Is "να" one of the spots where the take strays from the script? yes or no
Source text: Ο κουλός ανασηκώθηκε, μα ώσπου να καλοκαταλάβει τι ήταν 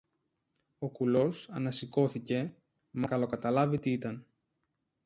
yes